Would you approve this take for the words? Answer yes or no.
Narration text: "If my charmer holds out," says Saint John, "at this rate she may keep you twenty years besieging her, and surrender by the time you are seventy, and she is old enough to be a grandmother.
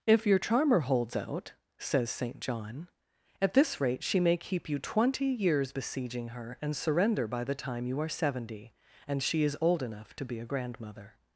no